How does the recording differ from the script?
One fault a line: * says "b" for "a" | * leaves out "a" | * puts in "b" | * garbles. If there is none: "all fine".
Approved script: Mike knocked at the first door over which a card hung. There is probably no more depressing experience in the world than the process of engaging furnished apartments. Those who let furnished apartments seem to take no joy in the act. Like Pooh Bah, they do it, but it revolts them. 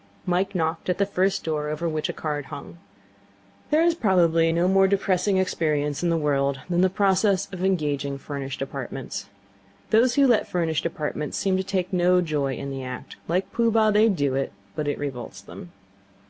all fine